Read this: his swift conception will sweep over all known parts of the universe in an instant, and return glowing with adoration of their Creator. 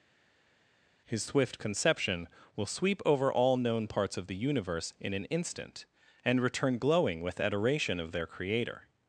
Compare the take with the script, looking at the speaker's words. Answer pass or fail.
pass